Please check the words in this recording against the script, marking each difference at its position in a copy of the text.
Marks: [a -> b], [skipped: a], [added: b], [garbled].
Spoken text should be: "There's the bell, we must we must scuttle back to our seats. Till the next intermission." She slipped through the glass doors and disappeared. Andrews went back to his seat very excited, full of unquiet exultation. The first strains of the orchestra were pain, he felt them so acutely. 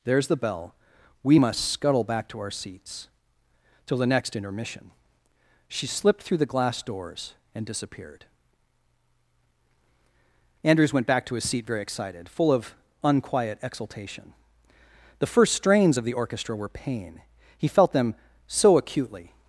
"There's the bell, we must [skipped: we must] scuttle back to our seats. Till the next intermission." She slipped through the glass doors and disappeared. Andrews went back to his seat very excited, full of unquiet exultation. The first strains of the orchestra were pain, he felt them so acutely.